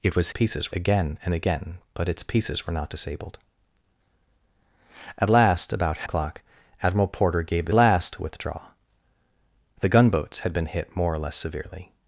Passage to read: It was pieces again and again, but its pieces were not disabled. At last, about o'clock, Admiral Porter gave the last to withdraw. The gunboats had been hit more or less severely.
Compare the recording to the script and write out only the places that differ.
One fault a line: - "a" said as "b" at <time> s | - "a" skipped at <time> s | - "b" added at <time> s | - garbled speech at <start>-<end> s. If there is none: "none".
none